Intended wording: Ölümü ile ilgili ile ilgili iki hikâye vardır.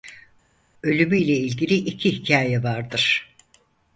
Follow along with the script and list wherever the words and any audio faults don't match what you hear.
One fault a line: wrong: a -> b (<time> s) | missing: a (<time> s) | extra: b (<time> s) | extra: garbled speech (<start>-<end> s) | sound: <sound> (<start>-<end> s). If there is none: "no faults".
missing: ile ilgili (1.7 s)